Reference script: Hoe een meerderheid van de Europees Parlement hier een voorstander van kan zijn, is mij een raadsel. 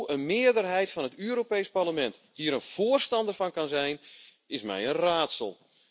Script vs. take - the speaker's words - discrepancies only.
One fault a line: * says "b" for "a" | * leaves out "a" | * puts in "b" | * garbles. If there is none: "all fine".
* says "het" for "de"